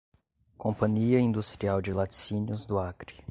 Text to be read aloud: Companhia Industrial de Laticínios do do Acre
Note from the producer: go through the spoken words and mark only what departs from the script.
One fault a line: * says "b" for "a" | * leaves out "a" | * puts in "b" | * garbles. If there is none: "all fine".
* leaves out "do"